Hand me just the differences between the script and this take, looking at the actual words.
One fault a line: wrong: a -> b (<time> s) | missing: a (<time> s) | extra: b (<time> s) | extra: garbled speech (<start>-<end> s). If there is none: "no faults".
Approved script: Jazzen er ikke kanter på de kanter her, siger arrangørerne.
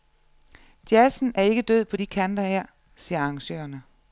wrong: kanter -> død (1.6 s)